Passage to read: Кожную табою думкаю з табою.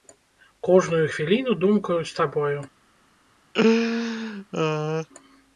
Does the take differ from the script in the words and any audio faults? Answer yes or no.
yes